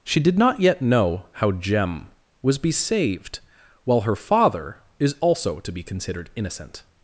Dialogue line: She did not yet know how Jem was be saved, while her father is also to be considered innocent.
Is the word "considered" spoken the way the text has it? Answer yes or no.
yes